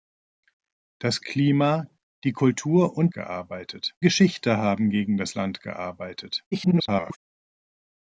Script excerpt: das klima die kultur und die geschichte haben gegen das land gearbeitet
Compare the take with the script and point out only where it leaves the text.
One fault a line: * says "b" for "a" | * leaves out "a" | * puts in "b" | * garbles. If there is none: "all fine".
* says "gearbeitet" for "die"
* garbles